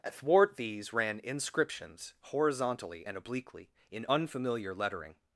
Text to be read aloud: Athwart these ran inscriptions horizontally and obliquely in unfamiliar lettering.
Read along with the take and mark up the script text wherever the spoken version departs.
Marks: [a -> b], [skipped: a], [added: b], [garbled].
Athwart these ran inscriptions horizontally and obliquely in unfamiliar lettering.